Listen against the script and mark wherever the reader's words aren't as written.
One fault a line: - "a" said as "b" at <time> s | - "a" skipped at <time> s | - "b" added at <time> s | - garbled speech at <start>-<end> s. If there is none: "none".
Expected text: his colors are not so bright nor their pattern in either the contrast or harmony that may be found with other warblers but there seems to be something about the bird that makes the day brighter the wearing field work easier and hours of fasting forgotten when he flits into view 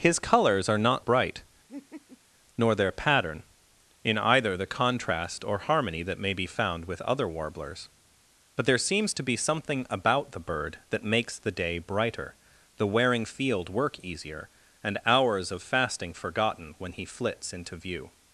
- "so" skipped at 1.1 s